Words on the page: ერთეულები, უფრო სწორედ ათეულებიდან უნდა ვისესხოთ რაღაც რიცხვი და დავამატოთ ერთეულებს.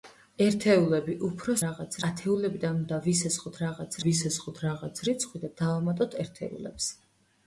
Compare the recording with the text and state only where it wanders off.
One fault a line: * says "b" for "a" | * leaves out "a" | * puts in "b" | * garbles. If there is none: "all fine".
* says "რაღაც" for "სწორედ"
* puts in "ვისესხოთ რაღაც"